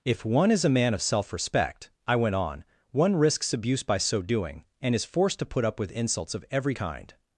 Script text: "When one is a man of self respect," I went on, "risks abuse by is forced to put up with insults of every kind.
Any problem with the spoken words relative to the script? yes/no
yes